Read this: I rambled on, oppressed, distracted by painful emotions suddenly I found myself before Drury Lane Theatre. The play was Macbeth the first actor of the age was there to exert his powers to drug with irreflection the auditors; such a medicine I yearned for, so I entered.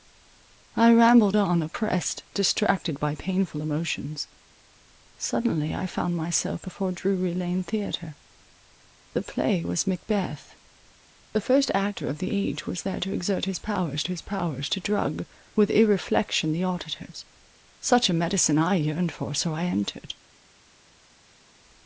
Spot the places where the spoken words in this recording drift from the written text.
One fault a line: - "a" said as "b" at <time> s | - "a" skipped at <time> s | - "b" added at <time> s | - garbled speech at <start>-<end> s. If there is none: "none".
- "his powers" added at 14.1 s